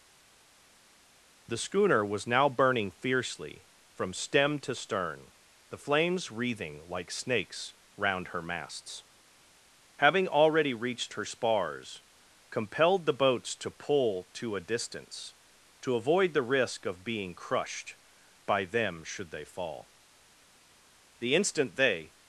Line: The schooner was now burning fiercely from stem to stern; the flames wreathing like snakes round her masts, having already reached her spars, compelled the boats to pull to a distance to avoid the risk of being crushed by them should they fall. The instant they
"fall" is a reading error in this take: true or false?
false